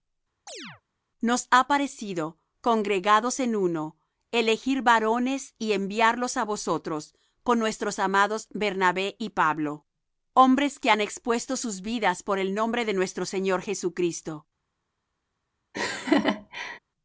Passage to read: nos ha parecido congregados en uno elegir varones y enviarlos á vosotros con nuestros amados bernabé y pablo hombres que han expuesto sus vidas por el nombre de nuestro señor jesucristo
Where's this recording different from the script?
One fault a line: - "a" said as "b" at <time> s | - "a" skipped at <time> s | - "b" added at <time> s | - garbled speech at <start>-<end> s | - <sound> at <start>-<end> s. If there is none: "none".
- chirp at 0.5-0.8 s
- laugh at 15.7-16.8 s